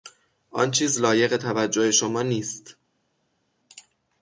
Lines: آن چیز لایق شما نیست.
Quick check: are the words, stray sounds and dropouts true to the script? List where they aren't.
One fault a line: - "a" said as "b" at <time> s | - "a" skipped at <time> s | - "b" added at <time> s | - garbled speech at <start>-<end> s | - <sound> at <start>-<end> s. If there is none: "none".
- "توجه" added at 1.4 s